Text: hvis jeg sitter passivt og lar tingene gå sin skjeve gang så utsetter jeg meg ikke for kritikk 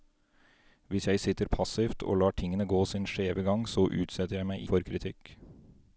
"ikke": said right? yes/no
no